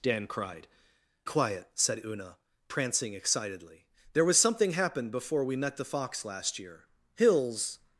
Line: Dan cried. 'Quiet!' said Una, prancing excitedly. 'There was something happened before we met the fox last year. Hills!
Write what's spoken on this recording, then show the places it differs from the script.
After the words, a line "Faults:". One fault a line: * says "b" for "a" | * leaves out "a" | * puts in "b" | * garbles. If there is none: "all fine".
Dan cried. 'Quiet!' said Una, prancing excitedly. 'There was something happened before we met the fox last year. Hills!
Faults:
all fine